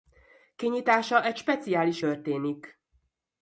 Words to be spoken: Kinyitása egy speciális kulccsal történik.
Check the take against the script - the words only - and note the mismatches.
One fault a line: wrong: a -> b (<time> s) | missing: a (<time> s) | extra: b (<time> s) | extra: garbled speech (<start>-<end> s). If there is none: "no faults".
missing: kulccsal (2.0 s)